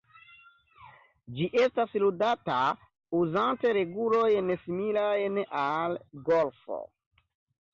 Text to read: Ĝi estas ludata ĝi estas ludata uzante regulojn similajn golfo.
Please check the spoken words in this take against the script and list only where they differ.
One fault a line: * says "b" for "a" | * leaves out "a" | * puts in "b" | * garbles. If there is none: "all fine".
* leaves out "ĝi estas ludata"
* puts in "al"